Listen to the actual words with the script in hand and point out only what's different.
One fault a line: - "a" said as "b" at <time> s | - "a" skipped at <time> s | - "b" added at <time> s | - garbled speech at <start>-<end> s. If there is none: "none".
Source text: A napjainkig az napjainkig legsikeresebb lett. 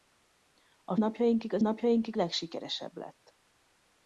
none